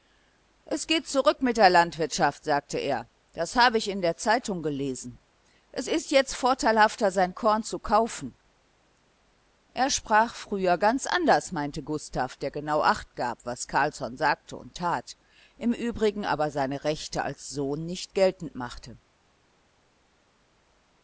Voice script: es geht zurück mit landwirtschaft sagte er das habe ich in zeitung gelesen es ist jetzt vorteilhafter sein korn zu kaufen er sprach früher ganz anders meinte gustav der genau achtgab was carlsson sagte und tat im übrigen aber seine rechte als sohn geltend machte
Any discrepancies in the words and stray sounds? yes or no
yes